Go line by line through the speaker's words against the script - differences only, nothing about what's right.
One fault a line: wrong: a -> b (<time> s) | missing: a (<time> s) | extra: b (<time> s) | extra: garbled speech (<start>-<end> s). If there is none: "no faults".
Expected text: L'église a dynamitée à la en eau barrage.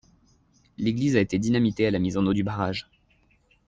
extra: été (1.2 s)
extra: mise (2.0 s)
extra: du (2.3 s)